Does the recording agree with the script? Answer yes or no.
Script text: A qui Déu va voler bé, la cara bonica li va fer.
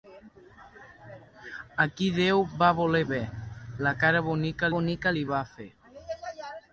no